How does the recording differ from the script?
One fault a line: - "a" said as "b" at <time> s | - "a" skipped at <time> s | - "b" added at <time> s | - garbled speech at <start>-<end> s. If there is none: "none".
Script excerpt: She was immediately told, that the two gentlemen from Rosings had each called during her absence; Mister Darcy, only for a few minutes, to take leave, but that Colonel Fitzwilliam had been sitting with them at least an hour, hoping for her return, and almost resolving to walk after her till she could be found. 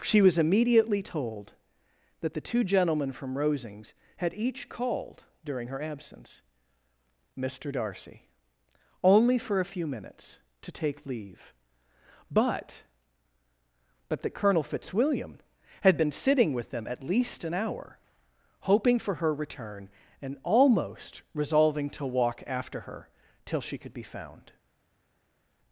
- "but" added at 14.1 s